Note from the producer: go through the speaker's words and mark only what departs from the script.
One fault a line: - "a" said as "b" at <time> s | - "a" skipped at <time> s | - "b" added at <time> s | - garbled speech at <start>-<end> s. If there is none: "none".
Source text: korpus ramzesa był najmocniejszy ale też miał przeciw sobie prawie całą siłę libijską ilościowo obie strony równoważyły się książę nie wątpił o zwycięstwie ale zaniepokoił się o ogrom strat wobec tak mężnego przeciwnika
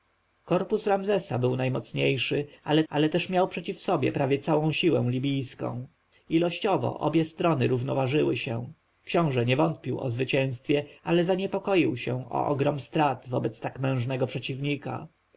- "ale" added at 2.9 s